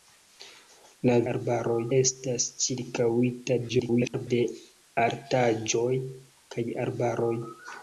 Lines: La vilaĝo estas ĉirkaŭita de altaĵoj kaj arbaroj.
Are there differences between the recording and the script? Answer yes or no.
yes